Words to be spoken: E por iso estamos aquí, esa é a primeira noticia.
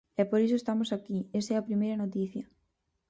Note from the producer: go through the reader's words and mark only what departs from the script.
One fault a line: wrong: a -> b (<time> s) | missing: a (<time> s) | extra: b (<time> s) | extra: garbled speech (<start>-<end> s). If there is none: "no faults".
no faults